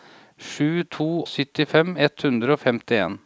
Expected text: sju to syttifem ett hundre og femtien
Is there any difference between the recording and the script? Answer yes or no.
no